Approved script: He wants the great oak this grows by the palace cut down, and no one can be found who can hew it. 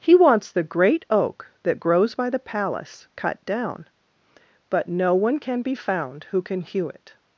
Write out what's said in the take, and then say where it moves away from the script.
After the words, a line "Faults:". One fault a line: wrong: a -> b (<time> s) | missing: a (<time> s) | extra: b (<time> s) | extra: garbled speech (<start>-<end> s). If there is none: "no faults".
He wants the great oak that grows by the palace cut down, but no one can be found who can hew it.
Faults:
wrong: this -> that (1.6 s)
wrong: and -> but (4.7 s)